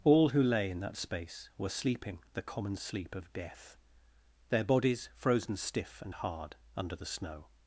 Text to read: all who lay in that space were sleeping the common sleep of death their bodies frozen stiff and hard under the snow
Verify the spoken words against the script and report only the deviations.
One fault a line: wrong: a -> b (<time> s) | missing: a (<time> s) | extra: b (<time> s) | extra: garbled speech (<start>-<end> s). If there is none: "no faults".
no faults